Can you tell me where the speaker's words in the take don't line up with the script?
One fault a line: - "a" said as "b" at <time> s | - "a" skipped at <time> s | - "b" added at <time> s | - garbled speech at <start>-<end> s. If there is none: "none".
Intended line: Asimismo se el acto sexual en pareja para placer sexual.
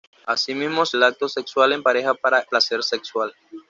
none